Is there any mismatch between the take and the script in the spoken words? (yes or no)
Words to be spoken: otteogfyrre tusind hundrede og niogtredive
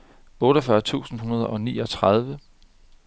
no